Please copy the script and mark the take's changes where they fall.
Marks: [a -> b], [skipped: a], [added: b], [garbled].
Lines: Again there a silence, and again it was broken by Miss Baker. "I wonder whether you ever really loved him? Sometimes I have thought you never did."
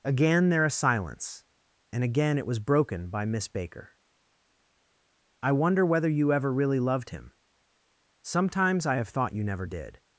Again there a silence, and again it was broken by Miss Baker. "I wonder whether you ever really loved him? Sometimes I have thought you never did."